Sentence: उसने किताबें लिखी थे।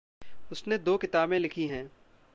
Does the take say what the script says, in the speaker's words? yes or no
no